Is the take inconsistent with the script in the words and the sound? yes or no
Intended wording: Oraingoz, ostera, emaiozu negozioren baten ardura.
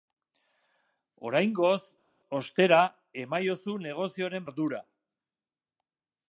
yes